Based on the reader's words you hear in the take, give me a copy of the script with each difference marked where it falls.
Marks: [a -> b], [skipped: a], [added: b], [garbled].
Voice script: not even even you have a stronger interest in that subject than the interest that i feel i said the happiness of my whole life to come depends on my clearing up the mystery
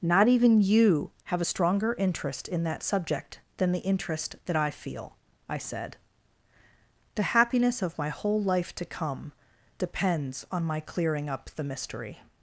not even [skipped: even] you have a stronger interest in that subject than the interest that i feel i said the happiness of my whole life to come depends on my clearing up the mystery